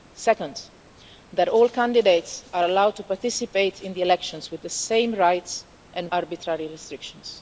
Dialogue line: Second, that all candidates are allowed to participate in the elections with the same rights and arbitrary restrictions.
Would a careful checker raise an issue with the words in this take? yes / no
no